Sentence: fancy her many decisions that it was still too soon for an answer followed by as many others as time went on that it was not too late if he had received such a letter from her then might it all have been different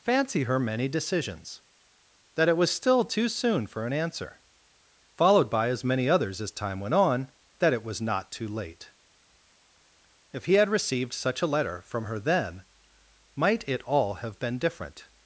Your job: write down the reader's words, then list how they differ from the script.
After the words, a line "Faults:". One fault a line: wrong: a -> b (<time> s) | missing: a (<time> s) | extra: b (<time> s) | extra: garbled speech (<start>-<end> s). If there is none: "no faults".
fancy her many decisions that it was still too soon for an answer followed by as many others as time went on that it was not too late if he had received such a letter from her then might it all have been different
Faults:
no faults